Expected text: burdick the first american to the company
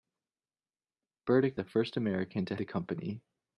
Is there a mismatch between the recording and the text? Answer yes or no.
no